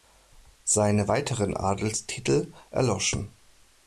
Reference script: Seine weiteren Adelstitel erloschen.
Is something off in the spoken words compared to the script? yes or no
no